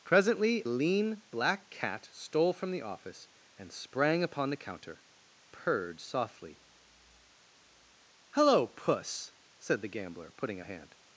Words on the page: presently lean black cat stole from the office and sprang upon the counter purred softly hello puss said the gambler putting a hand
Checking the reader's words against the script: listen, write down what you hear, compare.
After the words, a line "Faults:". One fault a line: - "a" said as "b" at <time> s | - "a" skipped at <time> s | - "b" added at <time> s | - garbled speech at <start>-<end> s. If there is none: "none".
presently lean black cat stole from the office and sprang upon the counter purred softly hello puss said the gambler putting a hand
Faults:
none